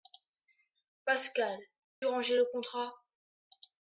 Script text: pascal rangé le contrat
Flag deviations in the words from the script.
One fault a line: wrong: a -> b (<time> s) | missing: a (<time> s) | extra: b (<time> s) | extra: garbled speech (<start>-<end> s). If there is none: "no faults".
no faults